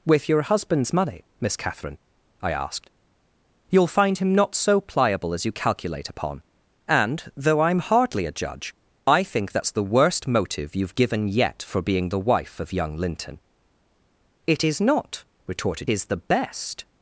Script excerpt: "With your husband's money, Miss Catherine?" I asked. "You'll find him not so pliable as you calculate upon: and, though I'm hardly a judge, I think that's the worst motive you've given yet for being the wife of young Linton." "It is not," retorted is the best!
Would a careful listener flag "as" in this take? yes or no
no